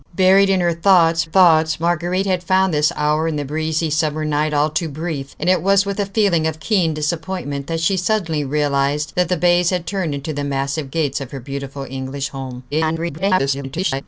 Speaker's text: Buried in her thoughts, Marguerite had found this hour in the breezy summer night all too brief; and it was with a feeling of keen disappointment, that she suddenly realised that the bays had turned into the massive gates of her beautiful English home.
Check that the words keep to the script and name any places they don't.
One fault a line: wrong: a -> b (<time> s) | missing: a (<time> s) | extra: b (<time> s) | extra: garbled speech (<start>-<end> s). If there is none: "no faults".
extra: thoughts (1.2 s)
extra: garbled speech (12.7-14.0 s)